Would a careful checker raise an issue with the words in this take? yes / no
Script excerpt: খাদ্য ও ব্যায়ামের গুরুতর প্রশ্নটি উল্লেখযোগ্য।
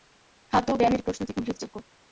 yes